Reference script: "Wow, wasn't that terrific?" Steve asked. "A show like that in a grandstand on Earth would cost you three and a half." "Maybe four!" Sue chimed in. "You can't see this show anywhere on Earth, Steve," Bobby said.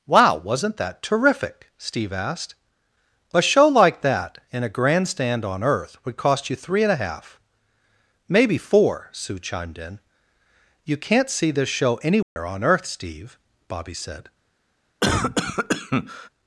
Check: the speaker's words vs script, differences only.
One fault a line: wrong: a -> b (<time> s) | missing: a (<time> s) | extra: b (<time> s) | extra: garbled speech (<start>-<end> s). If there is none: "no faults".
no faults